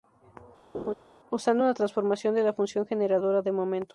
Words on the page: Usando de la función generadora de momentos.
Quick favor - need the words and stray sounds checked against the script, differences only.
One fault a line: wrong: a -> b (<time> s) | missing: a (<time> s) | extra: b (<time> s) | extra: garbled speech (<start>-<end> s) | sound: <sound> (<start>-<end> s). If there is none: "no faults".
sound: laugh (0.7-0.9 s)
extra: una transformación (1.6 s)